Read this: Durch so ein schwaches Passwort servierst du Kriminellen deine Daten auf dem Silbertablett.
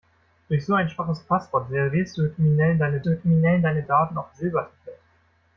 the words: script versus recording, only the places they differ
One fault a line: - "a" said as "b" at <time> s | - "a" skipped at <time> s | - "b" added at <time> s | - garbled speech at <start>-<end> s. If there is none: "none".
- "du Kriminellen deine" added at 3.0 s
- "dem" skipped at 4.3 s